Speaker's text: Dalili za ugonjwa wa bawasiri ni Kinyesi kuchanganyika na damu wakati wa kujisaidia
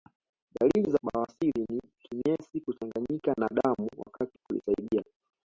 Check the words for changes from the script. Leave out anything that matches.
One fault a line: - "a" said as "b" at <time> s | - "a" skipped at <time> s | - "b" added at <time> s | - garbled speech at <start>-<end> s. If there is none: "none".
- "ugonjwa wa" skipped at 1.0 s
- "wa" skipped at 4.4 s